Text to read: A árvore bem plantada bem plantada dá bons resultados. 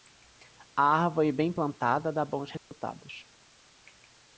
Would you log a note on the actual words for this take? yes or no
yes